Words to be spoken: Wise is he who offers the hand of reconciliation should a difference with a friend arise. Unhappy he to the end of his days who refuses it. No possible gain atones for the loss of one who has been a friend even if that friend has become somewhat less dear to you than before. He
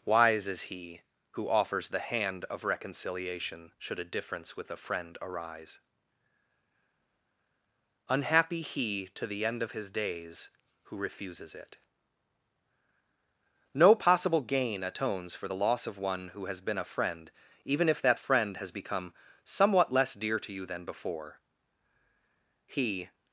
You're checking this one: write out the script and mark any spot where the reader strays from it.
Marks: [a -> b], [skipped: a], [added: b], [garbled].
Wise is he who offers the hand of reconciliation should a difference with a friend arise. Unhappy he to the end of his days who refuses it. No possible gain atones for the loss of one who has been a friend even if that friend has become somewhat less dear to you than before. He